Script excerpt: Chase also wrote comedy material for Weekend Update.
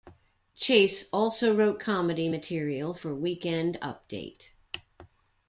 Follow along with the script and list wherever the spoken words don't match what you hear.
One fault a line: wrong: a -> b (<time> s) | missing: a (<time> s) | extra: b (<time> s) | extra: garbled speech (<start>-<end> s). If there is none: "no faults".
no faults